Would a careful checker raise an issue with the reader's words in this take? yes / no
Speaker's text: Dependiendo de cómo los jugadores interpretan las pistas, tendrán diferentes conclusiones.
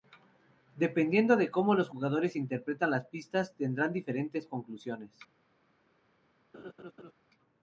no